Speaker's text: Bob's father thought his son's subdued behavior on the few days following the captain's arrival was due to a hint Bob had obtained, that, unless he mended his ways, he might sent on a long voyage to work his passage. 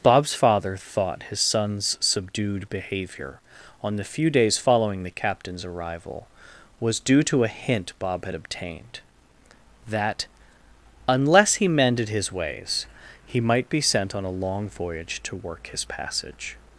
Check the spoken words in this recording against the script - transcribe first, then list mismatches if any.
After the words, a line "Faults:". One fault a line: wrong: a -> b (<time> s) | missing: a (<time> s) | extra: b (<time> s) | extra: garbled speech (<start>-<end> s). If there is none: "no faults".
Bob's father thought his son's subdued behavior on the few days following the captain's arrival was due to a hint Bob had obtained, that, unless he mended his ways, he might be sent on a long voyage to work his passage.
Faults:
extra: be (13.7 s)